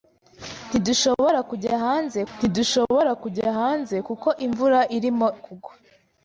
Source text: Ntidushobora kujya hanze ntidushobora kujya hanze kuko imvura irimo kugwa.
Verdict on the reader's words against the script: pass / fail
pass